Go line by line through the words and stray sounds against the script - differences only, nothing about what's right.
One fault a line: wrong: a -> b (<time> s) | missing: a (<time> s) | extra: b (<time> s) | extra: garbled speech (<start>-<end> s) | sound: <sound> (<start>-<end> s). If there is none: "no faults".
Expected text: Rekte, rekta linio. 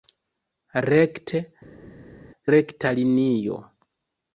no faults